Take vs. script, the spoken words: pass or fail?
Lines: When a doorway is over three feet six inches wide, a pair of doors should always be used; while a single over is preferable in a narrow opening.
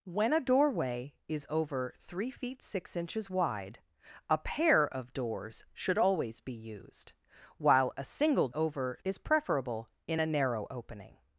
pass